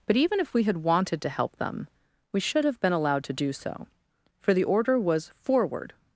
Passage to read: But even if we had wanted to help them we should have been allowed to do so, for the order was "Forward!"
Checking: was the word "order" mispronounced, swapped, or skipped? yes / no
no